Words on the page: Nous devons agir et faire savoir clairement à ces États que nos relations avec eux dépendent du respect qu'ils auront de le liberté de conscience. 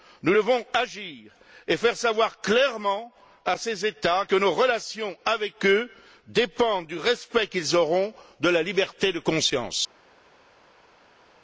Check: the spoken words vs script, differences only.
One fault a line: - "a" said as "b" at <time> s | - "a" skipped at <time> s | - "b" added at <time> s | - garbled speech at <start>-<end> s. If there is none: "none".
- "le" said as "la" at 8.5 s